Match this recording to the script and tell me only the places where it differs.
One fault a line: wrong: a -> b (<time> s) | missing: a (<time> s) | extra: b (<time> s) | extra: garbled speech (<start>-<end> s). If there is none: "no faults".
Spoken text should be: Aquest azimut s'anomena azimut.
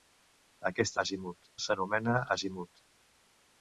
no faults